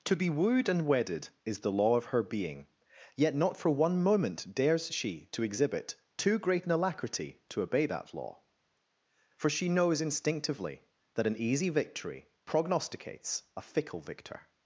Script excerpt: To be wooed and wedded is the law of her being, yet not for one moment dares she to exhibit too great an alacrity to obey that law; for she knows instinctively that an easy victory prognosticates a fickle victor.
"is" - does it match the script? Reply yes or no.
yes